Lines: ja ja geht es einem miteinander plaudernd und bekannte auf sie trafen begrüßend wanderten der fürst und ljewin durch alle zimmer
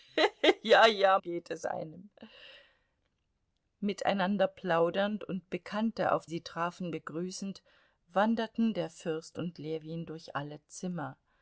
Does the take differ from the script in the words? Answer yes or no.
no